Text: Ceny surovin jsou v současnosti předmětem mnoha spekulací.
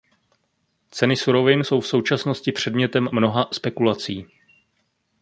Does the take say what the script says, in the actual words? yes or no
yes